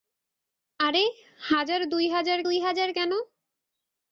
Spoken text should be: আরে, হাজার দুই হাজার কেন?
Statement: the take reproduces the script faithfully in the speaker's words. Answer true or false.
false